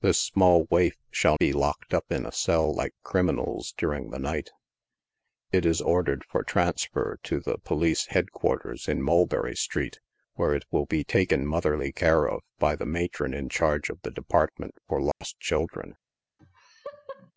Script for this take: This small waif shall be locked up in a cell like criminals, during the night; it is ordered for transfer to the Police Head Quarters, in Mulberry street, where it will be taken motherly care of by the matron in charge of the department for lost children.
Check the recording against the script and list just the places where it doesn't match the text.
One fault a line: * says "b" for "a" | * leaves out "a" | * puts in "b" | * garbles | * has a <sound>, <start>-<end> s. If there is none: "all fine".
* has a dropout, 15.1-15.2 s
* has a laugh, 16.4-17.3 s